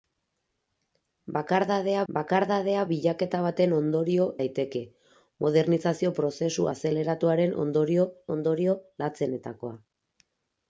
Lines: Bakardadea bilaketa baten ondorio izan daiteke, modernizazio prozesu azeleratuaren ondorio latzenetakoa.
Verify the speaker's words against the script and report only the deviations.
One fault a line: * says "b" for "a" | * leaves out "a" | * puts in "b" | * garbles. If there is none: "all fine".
* puts in "bakardadea"
* leaves out "izan"
* puts in "ondorio"